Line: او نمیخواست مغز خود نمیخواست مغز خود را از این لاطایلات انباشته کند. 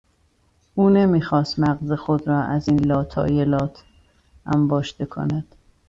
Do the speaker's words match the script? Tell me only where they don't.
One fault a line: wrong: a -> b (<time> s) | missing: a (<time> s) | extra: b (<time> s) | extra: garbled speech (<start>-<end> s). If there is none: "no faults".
missing: نمیخواست مغز خود (2.3 s)